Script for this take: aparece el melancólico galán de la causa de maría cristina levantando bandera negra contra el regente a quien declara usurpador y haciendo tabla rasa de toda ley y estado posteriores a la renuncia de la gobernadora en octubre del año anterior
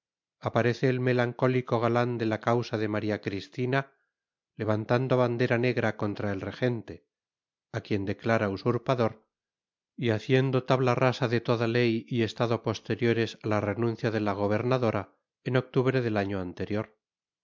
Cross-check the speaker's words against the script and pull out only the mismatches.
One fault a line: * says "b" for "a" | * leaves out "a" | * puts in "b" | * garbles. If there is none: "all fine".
all fine